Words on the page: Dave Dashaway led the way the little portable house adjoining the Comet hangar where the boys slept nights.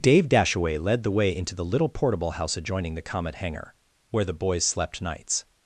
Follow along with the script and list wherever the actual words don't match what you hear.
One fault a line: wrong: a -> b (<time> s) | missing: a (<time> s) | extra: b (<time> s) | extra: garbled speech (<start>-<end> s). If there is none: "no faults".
extra: into (1.4 s)